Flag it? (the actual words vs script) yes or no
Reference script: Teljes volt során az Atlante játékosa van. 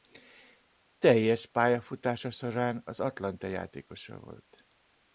yes